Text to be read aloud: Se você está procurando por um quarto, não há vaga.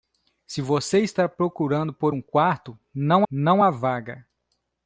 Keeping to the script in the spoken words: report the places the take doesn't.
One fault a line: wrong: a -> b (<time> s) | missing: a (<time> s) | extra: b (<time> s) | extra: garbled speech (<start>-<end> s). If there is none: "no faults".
extra: não (3.3 s)